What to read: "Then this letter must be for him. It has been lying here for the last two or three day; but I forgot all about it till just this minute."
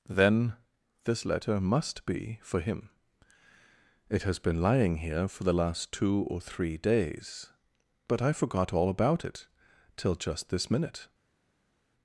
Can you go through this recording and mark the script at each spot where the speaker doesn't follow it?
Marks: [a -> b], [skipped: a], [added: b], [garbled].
"Then this letter must be for him. It has been lying here for the last two or three [day; -> days] but I forgot all about it till just this minute."